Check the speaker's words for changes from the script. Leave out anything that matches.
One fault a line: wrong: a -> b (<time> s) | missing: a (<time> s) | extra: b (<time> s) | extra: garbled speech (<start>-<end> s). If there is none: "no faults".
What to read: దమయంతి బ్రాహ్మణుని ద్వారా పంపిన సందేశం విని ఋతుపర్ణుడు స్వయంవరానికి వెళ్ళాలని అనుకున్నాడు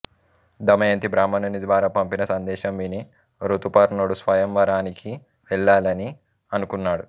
no faults